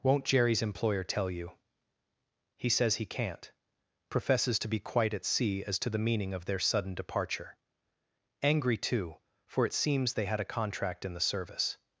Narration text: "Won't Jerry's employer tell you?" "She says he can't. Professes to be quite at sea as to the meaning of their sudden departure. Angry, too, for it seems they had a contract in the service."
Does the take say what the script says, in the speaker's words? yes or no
no